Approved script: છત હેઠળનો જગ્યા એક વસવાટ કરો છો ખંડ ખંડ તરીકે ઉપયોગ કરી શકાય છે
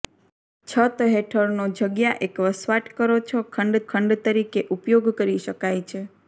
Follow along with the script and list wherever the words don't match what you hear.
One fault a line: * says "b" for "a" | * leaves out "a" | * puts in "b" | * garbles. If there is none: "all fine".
all fine